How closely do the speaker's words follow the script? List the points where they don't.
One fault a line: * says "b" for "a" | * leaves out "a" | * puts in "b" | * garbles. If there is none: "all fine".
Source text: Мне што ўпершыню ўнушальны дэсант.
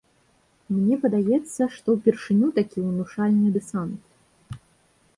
* puts in "падаецца"
* puts in "такі"